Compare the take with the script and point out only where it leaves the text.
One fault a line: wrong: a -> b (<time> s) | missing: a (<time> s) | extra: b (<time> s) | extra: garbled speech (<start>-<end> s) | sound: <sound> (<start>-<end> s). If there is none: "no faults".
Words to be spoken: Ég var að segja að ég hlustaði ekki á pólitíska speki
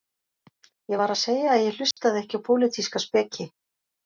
sound: dropout (1.9-2.0 s)